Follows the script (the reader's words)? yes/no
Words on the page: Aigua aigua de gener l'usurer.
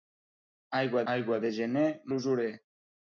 yes